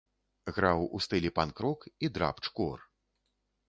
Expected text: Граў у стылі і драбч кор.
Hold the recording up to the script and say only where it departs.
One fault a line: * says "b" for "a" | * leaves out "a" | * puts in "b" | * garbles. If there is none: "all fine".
* puts in "панк рок"